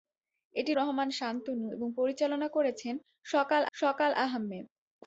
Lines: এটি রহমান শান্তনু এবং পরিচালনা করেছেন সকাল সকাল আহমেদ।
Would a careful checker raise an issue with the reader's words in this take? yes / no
no